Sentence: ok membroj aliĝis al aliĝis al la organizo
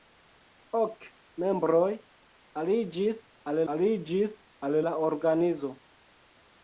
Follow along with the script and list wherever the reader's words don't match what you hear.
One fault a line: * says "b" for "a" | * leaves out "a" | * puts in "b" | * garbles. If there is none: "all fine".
all fine